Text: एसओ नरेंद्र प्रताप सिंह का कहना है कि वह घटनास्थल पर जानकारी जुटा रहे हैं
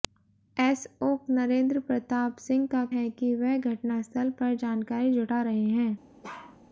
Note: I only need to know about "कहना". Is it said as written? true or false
false